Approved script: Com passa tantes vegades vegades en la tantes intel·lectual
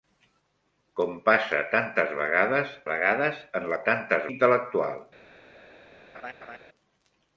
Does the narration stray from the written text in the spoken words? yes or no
no